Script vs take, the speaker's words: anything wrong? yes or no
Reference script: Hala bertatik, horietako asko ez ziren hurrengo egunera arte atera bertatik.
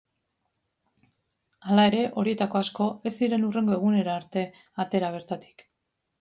yes